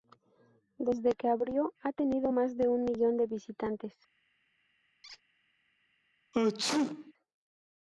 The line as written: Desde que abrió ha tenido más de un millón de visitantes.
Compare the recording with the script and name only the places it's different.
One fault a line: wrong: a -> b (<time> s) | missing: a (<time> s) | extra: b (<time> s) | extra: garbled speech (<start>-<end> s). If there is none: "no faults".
no faults